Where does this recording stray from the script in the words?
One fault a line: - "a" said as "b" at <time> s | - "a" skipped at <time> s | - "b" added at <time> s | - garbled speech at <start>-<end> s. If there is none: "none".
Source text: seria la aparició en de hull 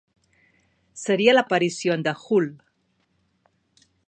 none